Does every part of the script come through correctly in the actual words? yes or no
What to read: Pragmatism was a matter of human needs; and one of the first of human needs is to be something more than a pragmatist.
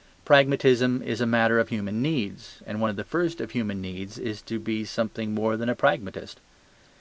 no